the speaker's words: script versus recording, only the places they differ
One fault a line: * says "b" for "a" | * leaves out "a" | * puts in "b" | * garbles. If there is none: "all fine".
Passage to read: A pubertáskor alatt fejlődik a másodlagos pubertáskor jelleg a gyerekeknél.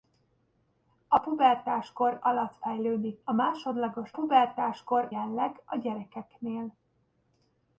all fine